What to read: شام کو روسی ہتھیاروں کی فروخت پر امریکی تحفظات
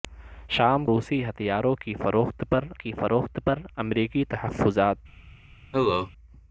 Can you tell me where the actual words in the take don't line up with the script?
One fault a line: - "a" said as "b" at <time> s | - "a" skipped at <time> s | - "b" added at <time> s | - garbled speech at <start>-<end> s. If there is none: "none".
- "کو" skipped at 0.9 s
- "کی فروخت پر" added at 2.7 s